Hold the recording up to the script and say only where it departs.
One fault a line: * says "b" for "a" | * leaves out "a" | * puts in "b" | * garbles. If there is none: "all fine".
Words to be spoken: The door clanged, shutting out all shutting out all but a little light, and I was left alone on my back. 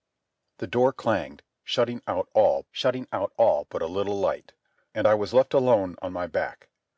all fine